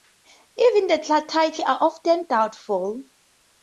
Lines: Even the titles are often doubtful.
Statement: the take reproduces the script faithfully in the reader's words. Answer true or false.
true